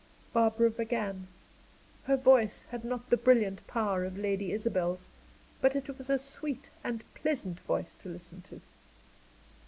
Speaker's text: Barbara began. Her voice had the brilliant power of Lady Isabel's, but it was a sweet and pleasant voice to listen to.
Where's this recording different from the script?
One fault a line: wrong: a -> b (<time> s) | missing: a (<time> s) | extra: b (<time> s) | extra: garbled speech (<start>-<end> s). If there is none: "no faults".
extra: not (2.8 s)